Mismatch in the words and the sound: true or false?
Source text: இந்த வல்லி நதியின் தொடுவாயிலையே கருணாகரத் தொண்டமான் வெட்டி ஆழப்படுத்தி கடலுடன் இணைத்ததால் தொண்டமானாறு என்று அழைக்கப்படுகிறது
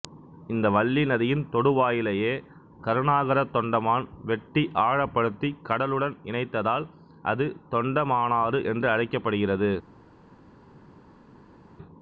true